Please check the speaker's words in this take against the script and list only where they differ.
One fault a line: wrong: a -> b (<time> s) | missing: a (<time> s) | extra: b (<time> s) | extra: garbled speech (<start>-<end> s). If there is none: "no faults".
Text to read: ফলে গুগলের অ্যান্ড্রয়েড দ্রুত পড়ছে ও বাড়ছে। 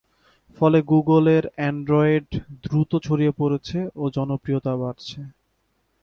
extra: ছড়িয়ে (3.1 s)
extra: জনপ্রিয়তা (4.2 s)